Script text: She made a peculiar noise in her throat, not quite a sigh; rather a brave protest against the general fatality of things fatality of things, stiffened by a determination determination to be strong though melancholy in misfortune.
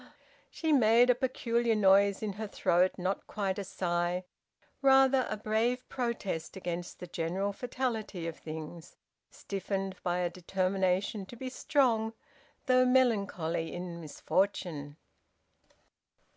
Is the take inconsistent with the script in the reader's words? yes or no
yes